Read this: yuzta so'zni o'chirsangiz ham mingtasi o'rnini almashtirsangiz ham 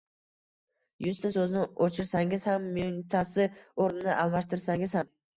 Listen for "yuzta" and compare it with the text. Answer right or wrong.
right